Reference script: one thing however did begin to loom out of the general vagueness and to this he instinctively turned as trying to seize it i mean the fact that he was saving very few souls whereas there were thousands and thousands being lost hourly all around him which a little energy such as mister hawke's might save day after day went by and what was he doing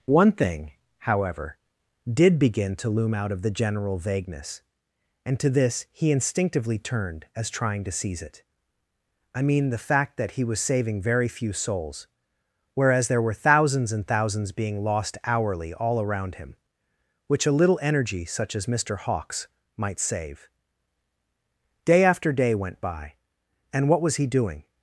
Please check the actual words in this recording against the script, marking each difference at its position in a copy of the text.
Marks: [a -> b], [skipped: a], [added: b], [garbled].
one thing however did begin to loom out of the general vagueness and to this he instinctively turned as trying to seize it i mean the fact that he was saving very few souls whereas there were thousands and thousands being lost hourly all around him which a little energy such as mister hawke's might save day after day went by and what was he doing